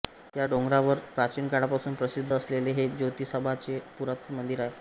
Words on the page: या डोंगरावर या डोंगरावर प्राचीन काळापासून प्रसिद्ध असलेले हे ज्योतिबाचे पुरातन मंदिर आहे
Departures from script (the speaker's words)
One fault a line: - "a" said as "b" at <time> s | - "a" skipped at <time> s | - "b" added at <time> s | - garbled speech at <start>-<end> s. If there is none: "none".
- "या डोंगरावर" skipped at 1.0 s